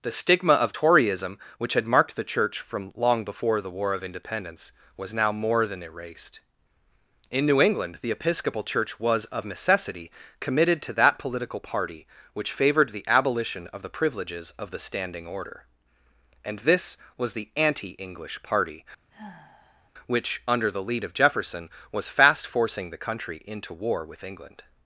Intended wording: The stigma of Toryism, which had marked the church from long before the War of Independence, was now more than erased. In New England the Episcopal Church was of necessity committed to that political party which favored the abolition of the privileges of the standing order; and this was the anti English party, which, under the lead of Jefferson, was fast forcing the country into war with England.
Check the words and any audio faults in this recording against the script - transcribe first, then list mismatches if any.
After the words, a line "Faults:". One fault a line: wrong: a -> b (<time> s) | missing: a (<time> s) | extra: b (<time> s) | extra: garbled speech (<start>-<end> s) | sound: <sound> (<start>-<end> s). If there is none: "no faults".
The stigma of Toryism, which had marked the church from long before the War of Independence, was now more than erased. In New England the Episcopal Church was of necessity committed to that political party which favored the abolition of the privileges of the standing order; and this was the anti English party, which, under the lead of Jefferson, was fast forcing the country into war with England.
Faults:
sound: sigh (19.1-19.9 s)